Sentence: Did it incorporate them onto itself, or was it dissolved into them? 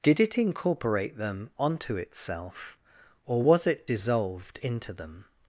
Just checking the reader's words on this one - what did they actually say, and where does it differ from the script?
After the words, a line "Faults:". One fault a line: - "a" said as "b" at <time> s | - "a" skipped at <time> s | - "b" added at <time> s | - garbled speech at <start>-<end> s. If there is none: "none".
Did it incorporate them onto itself, or was it dissolved into them?
Faults:
none